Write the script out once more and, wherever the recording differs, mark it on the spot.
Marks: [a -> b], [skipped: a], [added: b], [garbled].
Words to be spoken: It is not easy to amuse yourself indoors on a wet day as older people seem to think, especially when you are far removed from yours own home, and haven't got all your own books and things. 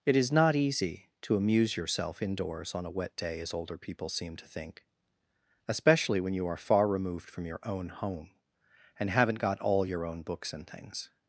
It is not easy to amuse yourself indoors on a wet day as older people seem to think, especially when you are far removed from [yours -> your] own home, and haven't got all your own books and things.